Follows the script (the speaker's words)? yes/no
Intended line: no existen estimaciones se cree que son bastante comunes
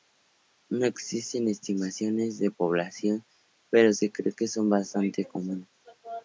no